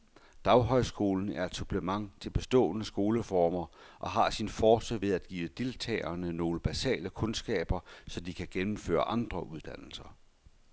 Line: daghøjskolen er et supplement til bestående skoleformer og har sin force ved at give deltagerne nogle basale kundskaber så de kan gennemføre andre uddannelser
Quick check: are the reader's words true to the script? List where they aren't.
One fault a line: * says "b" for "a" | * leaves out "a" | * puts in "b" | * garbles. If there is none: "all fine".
all fine